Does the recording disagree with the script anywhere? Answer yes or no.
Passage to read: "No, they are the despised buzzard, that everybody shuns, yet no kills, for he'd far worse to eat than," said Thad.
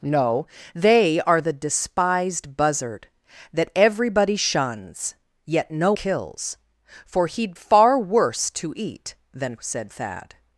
no